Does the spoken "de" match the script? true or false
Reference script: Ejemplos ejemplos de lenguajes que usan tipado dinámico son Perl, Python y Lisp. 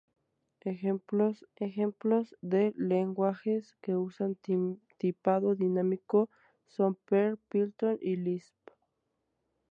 true